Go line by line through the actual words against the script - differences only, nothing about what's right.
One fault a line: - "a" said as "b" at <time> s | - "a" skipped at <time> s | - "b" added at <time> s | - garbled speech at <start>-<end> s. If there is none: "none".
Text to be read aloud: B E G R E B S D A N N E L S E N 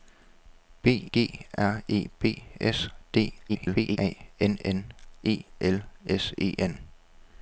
- "E" skipped at 1.1 s
- garbled speech at 3.5-4.0 s